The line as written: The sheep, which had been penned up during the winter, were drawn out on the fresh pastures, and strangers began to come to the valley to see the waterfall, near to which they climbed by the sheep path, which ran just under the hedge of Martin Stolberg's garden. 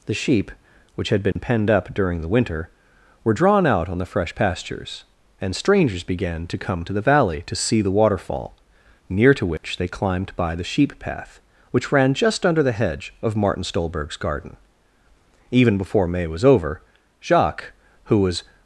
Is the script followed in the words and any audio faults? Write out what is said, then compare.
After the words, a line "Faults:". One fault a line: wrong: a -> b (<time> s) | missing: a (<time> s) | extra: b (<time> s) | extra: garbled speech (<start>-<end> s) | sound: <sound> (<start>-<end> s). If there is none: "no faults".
The sheep, which had been penned up during the winter, were drawn out on the fresh pastures, and strangers began to come to the valley to see the waterfall, near to which they climbed by the sheep path, which ran just under the hedge of Martin Stolberg's garden. Even before May was over, Jacques, who was
Faults:
sound: dropout (1.3-1.4 s)
sound: dropout (9.6-9.6 s)
extra: Even before May was over Jacques who was (15.5 s)